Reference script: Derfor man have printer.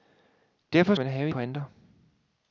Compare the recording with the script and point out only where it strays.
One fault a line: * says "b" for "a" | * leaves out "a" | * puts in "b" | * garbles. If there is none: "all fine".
all fine